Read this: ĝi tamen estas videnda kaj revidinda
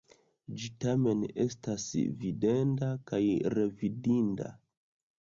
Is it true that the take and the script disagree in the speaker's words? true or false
false